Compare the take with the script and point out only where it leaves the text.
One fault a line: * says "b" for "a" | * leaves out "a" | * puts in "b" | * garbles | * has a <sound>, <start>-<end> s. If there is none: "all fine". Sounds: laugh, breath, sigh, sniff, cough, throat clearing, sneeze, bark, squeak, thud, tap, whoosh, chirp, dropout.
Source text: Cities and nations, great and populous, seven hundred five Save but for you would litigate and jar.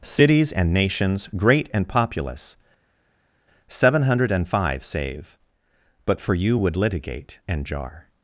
all fine